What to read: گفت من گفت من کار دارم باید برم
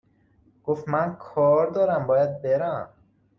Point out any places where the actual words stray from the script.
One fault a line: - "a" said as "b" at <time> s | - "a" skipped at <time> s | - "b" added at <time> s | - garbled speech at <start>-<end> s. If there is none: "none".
- "گفت من" skipped at 1.1 s